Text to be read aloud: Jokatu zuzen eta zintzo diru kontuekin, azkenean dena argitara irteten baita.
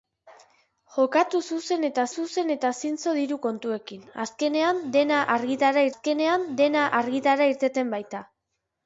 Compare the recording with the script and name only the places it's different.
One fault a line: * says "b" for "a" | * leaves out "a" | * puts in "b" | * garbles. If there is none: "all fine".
* puts in "zuzen eta"
* puts in "azkenean dena argitara"